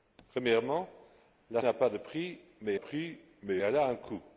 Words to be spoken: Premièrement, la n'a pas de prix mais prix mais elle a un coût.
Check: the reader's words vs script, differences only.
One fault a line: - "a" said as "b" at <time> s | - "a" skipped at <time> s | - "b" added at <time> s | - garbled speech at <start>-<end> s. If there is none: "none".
none